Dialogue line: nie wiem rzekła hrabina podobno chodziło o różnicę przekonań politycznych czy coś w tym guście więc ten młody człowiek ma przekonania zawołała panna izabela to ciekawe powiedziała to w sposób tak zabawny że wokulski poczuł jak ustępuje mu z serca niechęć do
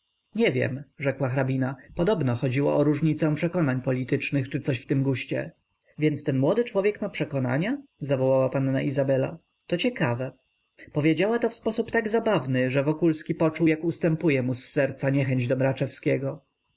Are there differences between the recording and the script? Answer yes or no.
no